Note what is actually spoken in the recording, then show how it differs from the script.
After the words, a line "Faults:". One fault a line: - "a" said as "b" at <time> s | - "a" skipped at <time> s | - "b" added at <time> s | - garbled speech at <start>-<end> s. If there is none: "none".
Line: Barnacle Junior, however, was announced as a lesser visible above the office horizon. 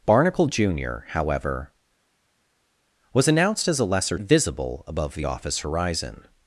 Barnacle Junior, however, was announced as a lesser visible above the office horizon.
Faults:
none